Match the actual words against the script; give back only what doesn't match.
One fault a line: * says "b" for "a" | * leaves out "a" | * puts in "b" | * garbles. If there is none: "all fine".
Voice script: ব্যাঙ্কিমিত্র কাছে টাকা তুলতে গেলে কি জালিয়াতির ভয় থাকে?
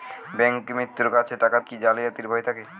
* leaves out "তুলতে গেলে"